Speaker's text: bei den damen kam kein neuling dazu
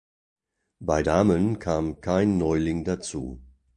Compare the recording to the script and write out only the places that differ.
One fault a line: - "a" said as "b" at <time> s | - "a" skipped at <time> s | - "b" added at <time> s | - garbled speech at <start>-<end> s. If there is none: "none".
- "den" skipped at 1.0 s